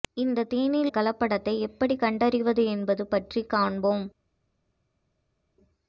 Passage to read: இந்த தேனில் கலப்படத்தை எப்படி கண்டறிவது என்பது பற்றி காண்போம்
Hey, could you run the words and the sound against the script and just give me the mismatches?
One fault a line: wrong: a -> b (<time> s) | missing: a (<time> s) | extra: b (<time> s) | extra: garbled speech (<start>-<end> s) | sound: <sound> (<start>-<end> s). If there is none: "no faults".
no faults